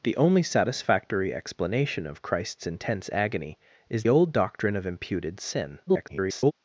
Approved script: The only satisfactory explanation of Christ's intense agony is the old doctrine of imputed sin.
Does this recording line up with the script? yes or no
no